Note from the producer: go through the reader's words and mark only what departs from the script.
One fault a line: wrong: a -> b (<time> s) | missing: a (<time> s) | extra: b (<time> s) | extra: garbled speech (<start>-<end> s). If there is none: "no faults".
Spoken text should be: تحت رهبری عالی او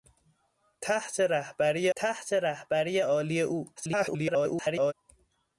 extra: تحت رهبری (2.0 s)
extra: garbled speech (3.8-4.9 s)